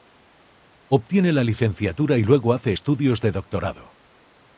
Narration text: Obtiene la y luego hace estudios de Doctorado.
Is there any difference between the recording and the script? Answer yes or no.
yes